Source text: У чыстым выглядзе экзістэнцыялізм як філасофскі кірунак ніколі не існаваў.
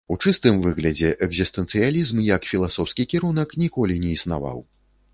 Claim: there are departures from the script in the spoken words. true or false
false